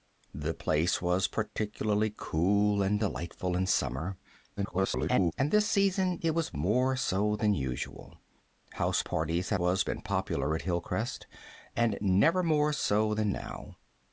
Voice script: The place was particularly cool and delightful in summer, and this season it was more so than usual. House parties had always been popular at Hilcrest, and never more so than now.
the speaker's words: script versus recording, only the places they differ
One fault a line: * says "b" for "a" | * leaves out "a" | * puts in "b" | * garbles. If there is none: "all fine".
* garbles
* says "was" for "always"